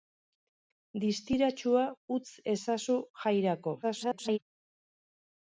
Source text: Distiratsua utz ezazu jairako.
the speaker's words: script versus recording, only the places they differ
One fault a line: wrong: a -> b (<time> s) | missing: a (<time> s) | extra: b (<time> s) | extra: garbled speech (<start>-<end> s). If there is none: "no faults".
extra: garbled speech (3.8-4.4 s)